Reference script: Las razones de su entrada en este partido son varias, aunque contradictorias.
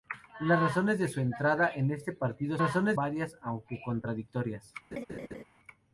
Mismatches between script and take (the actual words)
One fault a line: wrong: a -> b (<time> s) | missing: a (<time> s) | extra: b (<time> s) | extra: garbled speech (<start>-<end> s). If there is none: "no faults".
wrong: son -> razones (2.6 s)